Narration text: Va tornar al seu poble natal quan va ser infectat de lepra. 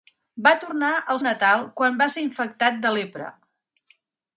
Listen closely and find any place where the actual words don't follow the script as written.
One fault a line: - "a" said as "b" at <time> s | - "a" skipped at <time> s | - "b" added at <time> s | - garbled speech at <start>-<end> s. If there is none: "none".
- "seu poble" skipped at 1.2 s